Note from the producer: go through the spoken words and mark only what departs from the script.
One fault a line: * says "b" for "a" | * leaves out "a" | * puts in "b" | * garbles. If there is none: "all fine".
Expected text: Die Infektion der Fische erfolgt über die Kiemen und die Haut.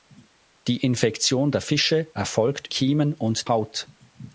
* leaves out "über die"
* leaves out "die"